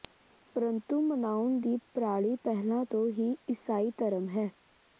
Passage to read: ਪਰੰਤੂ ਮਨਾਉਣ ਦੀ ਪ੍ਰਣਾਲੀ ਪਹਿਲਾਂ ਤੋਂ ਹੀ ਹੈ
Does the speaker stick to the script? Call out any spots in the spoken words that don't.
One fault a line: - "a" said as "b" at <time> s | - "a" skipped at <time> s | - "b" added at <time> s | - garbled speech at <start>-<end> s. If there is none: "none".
- "ਈਸਾਈ ਧਰਮ" added at 3.5 s